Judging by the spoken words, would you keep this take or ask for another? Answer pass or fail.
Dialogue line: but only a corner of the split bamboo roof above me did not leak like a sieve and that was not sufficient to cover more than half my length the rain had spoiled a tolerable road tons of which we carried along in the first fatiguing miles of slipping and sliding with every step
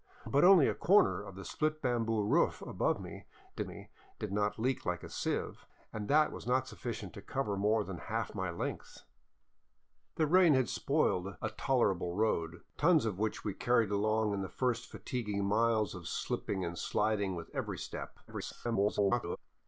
fail